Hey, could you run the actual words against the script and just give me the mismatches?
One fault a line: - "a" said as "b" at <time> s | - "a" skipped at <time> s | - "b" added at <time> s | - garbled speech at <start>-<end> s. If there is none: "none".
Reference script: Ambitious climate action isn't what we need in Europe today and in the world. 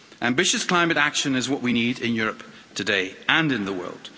- "isn't" said as "is" at 1.3 s